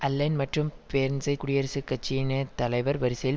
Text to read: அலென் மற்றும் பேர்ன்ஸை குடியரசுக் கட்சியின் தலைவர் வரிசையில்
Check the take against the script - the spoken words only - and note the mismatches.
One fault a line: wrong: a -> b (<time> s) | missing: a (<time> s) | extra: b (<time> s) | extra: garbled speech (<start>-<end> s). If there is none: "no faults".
no faults